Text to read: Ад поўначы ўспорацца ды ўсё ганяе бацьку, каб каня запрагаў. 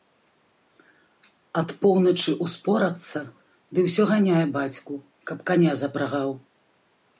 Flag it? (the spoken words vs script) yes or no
no